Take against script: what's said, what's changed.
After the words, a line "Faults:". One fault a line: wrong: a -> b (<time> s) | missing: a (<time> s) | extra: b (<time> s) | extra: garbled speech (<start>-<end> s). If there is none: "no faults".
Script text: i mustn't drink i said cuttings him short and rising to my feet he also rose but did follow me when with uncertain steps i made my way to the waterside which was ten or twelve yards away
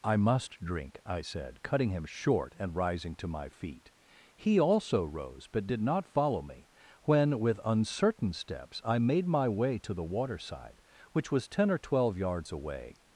i must drink i said cutting him short and rising to my feet he also rose but did not follow me when with uncertain steps i made my way to the waterside which was ten or twelve yards away
Faults:
wrong: mustn't -> must (0.2 s)
wrong: cuttings -> cutting (1.6 s)
extra: not (5.8 s)